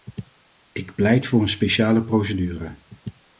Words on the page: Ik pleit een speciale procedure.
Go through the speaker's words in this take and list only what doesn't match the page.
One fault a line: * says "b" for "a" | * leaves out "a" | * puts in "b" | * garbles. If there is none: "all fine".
* puts in "voor"